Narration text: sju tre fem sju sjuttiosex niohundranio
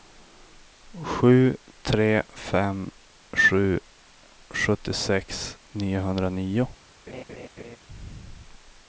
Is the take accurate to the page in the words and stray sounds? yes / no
no